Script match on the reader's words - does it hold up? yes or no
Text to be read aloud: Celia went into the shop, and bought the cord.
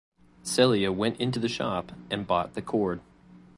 yes